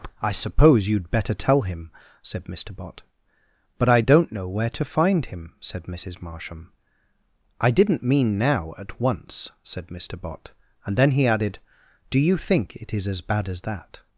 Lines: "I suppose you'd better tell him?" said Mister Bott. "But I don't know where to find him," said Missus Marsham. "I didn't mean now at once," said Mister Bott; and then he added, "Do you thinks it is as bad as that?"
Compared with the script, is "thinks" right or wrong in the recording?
wrong